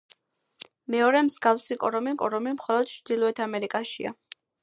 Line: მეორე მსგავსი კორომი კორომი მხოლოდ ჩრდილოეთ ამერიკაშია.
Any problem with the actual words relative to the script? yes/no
no